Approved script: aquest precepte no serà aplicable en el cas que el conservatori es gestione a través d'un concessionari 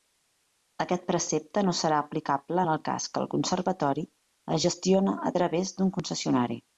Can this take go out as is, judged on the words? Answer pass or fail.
pass